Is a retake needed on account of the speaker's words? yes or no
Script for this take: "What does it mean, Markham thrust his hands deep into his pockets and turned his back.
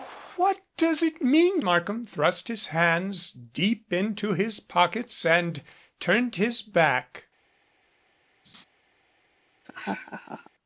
no